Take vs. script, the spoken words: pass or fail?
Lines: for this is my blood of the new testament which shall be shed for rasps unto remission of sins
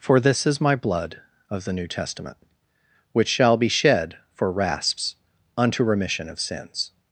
pass